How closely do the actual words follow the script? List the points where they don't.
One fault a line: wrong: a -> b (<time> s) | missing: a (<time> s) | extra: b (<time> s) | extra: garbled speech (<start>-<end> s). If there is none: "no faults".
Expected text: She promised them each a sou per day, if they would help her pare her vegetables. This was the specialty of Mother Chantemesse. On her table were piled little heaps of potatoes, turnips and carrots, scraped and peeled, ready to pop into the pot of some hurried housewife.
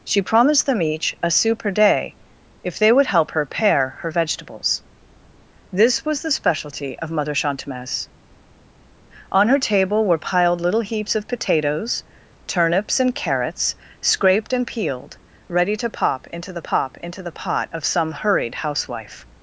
extra: pop into the (16.6 s)